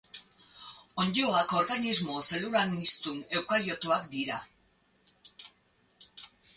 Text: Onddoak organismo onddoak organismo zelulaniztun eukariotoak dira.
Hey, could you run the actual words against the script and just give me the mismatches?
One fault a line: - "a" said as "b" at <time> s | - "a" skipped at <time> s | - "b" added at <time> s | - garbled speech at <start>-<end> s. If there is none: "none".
- "onddoak organismo" skipped at 2.2 s